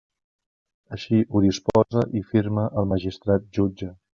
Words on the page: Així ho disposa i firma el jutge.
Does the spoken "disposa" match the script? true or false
true